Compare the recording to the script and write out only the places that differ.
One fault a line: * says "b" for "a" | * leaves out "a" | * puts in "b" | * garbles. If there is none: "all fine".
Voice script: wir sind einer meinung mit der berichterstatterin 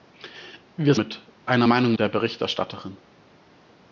* says "mit" for "sind"
* leaves out "mit"